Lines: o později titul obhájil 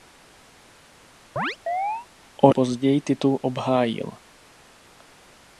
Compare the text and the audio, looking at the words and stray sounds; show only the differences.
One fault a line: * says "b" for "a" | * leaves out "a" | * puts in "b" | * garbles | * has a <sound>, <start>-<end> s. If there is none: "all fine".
* has a chirp, 1.4-2.1 s